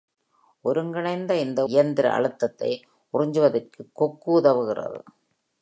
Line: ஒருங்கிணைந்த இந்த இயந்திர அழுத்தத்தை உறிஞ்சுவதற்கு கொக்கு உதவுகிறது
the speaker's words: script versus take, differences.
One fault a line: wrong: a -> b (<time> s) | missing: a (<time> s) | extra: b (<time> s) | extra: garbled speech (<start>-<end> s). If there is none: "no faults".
no faults